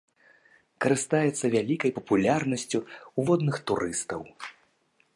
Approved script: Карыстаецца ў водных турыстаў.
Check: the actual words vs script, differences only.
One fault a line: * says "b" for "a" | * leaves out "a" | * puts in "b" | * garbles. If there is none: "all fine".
* puts in "вялікай папулярнасцю"